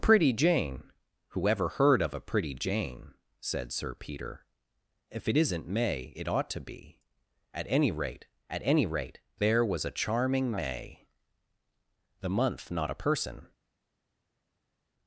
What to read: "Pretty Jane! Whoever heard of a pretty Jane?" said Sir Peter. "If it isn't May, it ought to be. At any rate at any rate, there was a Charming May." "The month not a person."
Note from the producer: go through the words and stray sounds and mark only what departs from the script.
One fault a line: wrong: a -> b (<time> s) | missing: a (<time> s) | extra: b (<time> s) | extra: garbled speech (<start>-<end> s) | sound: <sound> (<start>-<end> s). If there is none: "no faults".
no faults